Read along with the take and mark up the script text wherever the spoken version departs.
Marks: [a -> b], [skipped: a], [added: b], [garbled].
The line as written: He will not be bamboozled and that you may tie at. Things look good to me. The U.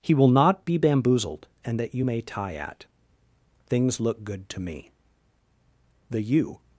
He will not be bamboozled and that you may tie at. Things look good to me. The U.